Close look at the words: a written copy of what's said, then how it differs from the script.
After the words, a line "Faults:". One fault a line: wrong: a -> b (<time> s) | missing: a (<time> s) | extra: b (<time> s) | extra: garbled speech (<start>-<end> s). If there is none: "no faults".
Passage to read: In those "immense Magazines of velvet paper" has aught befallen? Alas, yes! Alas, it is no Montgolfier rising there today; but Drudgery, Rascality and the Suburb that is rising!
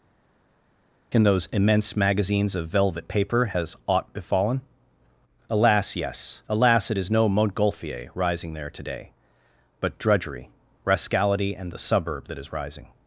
In those "immense Magazines of velvet paper" has aught befallen? Alas, yes! Alas, it is no Montgolfier rising there today; but Drudgery, Rascality and the Suburb that is rising!
Faults:
no faults